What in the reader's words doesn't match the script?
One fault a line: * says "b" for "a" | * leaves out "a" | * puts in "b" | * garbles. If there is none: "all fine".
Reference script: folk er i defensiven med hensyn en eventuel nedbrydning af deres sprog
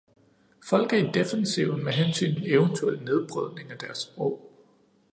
all fine